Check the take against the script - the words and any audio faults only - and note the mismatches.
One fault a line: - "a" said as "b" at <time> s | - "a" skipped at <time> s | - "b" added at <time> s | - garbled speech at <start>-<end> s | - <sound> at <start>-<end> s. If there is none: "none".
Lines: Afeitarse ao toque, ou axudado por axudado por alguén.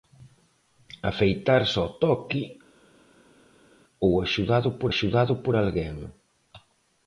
none